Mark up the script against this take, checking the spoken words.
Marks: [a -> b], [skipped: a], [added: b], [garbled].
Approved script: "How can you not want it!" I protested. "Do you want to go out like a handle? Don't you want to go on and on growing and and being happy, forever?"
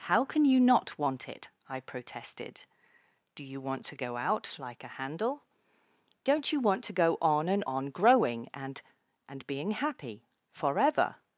"How can you not want it!" I protested. "Do you want to go out like a handle? Don't you want to go on and on growing and and being happy, forever?"